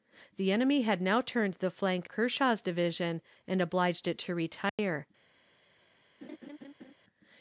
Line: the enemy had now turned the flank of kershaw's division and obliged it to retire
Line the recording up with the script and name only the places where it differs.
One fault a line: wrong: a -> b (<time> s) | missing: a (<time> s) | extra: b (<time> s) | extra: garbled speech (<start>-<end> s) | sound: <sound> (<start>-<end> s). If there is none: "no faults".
missing: of (2.1 s)
sound: dropout (4.7-4.8 s)
sound: laugh (6.2-6.9 s)